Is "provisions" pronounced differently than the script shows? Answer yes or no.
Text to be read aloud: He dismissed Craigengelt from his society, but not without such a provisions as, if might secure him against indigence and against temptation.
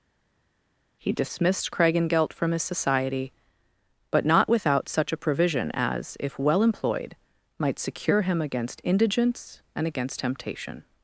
yes